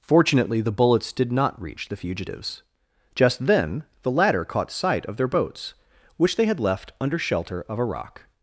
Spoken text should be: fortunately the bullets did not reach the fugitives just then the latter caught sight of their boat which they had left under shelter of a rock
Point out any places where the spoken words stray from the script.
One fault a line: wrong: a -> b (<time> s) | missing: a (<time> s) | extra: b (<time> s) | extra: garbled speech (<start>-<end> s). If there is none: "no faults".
wrong: boat -> boats (5.3 s)